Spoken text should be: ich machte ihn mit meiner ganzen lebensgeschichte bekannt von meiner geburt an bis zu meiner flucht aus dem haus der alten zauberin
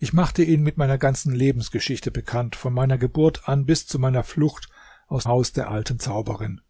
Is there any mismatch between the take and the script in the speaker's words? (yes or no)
yes